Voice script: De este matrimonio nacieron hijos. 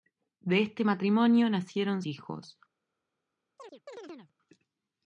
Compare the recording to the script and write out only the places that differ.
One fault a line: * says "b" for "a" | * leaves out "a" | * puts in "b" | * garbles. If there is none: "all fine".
all fine